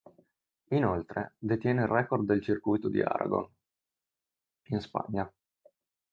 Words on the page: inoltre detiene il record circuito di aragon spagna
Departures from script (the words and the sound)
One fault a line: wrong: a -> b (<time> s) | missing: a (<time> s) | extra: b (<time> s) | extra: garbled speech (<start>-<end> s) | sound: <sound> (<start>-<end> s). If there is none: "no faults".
extra: del (2.2 s)
extra: in (4.7 s)